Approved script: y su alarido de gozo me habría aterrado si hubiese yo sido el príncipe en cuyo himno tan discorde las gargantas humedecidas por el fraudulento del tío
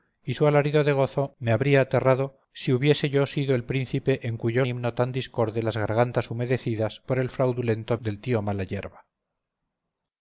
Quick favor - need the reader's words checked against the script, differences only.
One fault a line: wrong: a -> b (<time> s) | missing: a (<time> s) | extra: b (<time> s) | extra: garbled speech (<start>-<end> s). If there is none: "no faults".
no faults